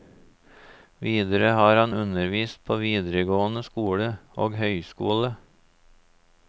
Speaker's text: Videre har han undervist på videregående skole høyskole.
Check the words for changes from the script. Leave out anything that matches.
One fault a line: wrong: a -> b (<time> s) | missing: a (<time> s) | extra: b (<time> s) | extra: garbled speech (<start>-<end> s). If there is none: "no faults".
extra: og (4.5 s)